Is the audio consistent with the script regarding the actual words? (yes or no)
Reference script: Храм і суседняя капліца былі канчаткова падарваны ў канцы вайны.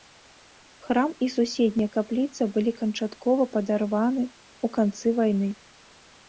yes